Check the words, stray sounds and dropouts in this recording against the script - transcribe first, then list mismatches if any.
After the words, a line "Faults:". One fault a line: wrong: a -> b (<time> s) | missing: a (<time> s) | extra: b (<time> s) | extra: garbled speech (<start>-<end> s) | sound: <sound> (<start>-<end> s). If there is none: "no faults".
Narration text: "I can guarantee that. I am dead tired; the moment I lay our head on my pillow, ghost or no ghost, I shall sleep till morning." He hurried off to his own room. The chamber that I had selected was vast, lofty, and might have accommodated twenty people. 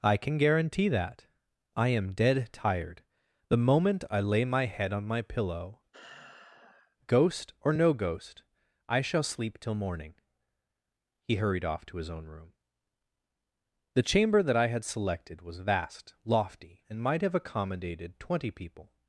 "I can guarantee that. I am dead tired; the moment I lay my head on my pillow, ghost or no ghost, I shall sleep till morning." He hurried off to his own room. The chamber that I had selected was vast, lofty, and might have accommodated twenty people.
Faults:
wrong: our -> my (4.4 s)
sound: sigh (5.9-7.0 s)